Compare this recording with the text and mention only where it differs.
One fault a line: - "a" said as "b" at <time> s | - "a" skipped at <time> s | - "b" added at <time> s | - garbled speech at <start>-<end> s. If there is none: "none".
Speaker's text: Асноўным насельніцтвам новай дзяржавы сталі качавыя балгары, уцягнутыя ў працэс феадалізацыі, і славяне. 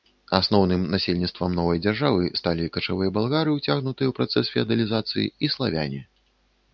none